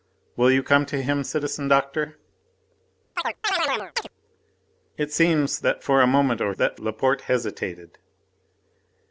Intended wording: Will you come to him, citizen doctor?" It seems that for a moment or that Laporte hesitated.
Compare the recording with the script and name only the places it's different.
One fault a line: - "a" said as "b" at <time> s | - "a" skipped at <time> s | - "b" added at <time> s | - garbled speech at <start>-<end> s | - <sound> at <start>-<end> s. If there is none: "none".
- chirp at 3.2-4.1 s